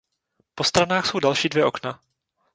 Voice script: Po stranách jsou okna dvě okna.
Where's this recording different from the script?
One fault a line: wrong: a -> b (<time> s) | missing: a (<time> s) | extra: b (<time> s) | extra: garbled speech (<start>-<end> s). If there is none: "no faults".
wrong: okna -> další (1.2 s)